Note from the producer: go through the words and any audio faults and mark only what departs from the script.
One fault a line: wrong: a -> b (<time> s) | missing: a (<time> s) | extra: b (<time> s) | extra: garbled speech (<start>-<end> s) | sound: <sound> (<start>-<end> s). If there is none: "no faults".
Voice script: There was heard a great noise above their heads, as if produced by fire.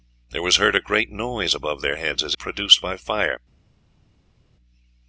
missing: if (2.4 s)